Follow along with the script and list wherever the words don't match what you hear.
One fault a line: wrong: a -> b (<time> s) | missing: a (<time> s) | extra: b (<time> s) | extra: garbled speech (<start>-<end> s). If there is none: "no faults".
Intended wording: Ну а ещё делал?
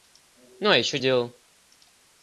no faults